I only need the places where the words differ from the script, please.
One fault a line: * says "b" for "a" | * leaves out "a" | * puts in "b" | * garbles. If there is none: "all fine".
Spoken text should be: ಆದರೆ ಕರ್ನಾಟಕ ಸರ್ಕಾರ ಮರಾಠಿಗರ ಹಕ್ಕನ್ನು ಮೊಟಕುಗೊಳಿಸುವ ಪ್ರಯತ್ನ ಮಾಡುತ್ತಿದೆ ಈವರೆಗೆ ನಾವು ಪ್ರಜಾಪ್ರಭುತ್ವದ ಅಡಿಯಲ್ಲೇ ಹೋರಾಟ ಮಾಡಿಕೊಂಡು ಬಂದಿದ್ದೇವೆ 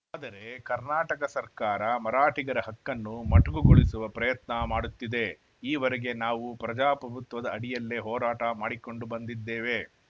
all fine